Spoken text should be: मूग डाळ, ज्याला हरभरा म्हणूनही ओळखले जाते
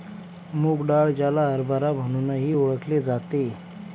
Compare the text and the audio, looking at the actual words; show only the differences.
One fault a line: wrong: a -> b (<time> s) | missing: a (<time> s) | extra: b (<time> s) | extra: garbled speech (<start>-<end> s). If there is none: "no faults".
no faults